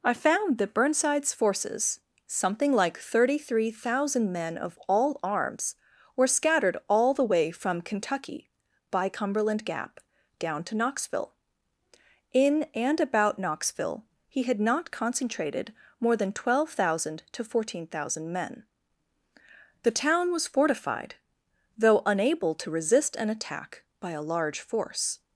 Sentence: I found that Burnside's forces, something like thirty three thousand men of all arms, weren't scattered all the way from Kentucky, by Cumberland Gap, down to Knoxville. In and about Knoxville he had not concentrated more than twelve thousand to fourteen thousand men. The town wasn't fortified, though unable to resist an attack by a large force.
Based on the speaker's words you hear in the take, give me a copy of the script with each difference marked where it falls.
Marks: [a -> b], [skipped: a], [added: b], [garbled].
I found that Burnside's forces, something like thirty three thousand men of all arms, [weren't -> were] scattered all the way from Kentucky, by Cumberland Gap, down to Knoxville. In and about Knoxville he had not concentrated more than twelve thousand to fourteen thousand men. The town [wasn't -> was] fortified, though unable to resist an attack by a large force.